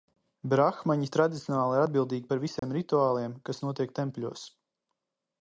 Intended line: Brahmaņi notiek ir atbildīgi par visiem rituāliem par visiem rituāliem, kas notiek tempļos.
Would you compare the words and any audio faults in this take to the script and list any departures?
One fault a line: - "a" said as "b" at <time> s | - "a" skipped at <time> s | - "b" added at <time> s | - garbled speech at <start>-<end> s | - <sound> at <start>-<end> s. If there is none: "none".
- "notiek" said as "tradicionāli" at 1.1 s
- dropout at 2.6-2.6 s
- "par visiem rituāliem" skipped at 3.4 s